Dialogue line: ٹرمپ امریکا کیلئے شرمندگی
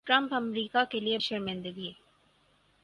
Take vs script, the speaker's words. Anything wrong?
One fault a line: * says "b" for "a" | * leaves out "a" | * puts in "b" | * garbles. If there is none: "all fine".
all fine